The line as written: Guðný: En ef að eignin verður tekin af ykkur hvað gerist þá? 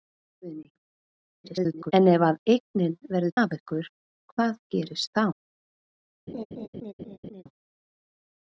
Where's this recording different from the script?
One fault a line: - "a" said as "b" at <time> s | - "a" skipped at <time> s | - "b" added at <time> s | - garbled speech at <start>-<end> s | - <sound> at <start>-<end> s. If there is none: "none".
- garbled speech at 1.4-1.9 s
- "tekin" skipped at 3.4 s
- laugh at 6.3-7.4 s